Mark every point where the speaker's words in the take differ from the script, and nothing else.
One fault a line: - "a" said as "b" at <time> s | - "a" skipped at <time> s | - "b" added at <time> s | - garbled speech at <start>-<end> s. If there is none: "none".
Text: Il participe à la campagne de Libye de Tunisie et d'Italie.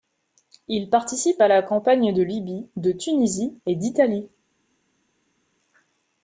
none